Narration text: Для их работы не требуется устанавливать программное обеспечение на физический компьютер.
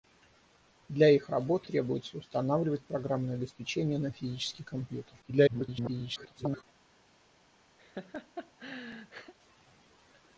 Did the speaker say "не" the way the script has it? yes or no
no